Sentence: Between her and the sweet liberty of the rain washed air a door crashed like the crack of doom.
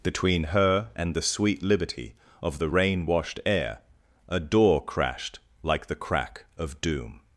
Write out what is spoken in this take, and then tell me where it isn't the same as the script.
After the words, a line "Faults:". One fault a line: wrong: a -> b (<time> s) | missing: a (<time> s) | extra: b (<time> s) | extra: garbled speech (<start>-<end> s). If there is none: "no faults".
Between her and the sweet liberty of the rain washed air a door crashed like the crack of doom.
Faults:
no faults